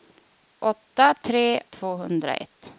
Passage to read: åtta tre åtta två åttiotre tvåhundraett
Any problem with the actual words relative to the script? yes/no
yes